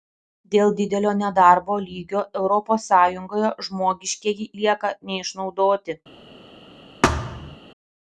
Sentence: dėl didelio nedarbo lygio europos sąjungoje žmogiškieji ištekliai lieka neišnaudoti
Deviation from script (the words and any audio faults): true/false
true